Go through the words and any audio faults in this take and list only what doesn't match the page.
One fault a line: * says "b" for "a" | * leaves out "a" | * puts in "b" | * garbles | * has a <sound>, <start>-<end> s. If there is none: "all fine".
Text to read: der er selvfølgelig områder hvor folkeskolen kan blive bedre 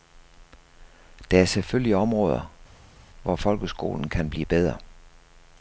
all fine